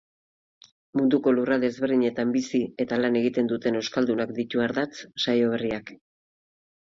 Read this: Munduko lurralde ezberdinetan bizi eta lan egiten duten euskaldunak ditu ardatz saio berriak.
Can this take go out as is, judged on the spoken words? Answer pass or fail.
pass